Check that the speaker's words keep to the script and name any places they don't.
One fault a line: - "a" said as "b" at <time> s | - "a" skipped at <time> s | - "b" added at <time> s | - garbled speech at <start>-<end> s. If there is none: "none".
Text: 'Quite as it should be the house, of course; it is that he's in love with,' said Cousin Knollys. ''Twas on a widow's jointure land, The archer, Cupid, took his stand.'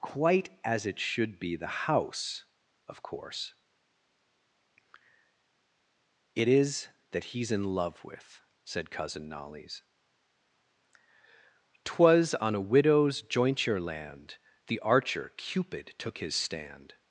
none